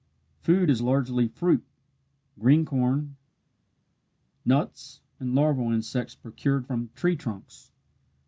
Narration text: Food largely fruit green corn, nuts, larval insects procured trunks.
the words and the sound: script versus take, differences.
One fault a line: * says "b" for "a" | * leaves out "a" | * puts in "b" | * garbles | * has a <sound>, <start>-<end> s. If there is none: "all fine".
* puts in "is"
* puts in "and"
* puts in "from tree"